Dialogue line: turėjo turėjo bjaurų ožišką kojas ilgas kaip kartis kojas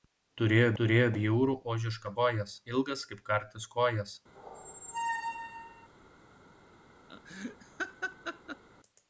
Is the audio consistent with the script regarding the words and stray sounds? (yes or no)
no